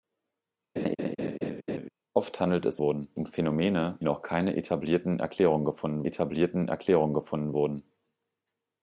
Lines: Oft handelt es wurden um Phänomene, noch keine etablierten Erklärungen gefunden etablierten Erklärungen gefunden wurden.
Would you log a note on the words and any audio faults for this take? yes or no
yes